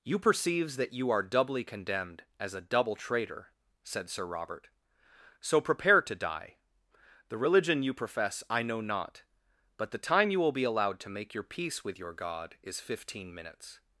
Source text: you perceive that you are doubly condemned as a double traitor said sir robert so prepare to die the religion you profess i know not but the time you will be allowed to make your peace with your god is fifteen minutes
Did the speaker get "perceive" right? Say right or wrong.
wrong